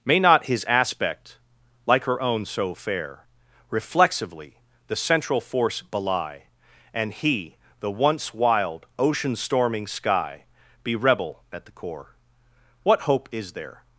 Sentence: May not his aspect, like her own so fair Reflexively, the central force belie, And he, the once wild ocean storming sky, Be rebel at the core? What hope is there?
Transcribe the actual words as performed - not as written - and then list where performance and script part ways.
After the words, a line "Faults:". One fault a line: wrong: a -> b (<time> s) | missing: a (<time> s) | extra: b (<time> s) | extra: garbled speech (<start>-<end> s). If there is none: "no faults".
May not his aspect, like her own so fair Reflexively, the central force belie, And he, the once wild ocean storming sky, Be rebel at the core? What hope is there?
Faults:
no faults